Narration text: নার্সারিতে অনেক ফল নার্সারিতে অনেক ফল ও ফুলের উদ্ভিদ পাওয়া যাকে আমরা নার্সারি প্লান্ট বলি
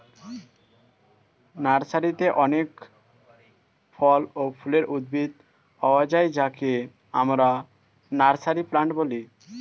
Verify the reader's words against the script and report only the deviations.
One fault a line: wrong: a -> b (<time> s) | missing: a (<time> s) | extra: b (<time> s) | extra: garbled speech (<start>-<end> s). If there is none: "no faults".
missing: নার্সারিতে অনেক ফল (4.2 s)
extra: যায় (6.1 s)